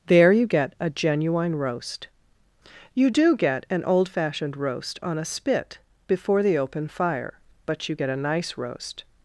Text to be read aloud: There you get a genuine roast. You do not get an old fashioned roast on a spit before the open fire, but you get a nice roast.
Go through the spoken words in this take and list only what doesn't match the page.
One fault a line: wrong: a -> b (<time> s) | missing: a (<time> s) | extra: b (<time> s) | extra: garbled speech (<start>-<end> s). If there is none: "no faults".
missing: not (3.4 s)